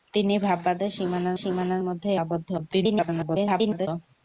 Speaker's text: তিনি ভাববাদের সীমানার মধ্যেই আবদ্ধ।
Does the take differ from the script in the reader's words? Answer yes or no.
yes